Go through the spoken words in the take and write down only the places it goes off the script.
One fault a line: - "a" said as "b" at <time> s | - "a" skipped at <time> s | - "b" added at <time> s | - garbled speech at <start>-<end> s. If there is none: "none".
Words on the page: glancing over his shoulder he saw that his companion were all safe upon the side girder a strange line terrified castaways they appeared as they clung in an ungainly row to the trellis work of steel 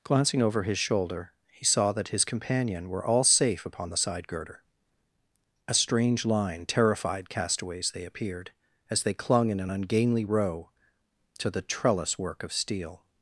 none